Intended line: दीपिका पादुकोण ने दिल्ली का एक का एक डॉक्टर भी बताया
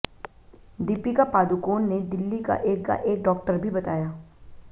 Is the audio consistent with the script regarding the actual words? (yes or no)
yes